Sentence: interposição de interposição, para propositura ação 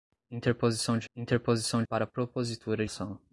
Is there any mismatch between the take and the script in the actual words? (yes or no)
no